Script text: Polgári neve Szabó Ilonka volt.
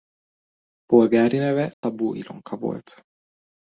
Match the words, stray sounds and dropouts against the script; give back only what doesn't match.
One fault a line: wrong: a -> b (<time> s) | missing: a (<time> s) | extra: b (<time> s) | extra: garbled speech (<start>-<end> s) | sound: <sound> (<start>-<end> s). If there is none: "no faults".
sound: dropout (1.7-1.8 s)